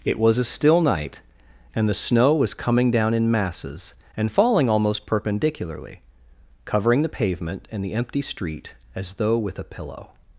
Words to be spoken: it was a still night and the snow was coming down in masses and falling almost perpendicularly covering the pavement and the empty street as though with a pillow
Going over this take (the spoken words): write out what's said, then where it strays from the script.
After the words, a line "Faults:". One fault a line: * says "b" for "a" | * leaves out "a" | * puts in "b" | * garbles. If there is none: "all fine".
it was a still night and the snow was coming down in masses and falling almost perpendicularly covering the pavement and the empty street as though with a pillow
Faults:
all fine